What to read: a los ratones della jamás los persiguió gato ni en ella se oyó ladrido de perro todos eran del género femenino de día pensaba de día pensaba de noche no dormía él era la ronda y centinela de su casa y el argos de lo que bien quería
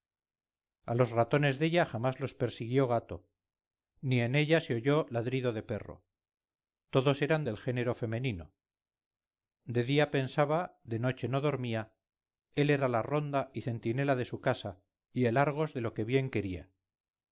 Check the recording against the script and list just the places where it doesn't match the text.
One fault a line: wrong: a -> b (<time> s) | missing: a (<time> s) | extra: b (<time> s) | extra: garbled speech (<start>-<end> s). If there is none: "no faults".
missing: día pensaba de (11.0 s)